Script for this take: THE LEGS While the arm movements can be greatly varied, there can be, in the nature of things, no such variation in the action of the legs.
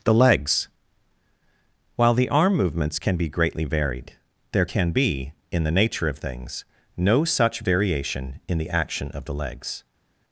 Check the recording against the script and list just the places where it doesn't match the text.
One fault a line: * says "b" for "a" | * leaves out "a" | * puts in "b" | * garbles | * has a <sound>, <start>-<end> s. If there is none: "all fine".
all fine